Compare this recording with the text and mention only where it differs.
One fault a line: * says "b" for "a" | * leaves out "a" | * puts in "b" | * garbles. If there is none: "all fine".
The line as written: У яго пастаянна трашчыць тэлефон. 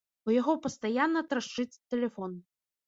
all fine